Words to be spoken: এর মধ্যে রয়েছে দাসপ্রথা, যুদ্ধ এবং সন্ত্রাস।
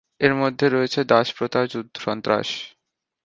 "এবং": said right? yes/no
no